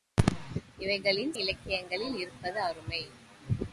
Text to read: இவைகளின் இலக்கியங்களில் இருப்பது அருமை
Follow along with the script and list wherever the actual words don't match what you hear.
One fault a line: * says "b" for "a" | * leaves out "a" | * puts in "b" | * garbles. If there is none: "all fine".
all fine